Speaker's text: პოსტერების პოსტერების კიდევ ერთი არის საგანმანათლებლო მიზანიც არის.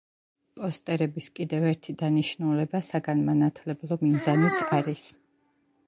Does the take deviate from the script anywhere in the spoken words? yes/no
yes